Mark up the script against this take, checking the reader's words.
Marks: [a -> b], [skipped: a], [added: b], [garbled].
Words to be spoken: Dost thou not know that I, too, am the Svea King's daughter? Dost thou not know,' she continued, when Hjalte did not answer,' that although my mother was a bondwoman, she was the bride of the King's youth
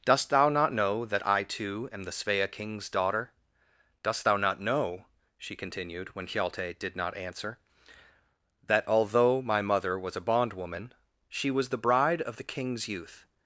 Dost thou not know that I, too, am the Svea King's daughter? Dost thou not know,' she continued, when Hjalte did not answer,' that although my mother was a bondwoman, she was the bride of the King's youth